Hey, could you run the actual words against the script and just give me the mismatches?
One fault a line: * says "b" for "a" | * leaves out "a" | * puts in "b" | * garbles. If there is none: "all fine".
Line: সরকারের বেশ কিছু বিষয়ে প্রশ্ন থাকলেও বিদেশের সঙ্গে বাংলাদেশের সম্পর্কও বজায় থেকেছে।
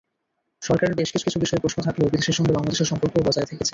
* puts in "কিছু"